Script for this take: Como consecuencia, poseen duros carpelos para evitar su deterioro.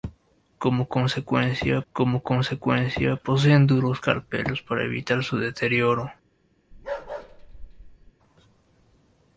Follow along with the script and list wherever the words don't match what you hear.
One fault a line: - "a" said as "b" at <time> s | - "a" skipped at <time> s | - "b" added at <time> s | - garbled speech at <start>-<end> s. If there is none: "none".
- "como consecuencia" added at 1.9 s